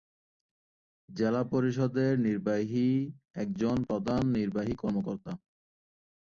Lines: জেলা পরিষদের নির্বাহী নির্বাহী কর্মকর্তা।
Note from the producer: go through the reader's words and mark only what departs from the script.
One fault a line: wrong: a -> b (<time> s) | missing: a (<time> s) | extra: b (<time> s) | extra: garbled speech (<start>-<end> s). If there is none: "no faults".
extra: একজন প্রধান (3.3 s)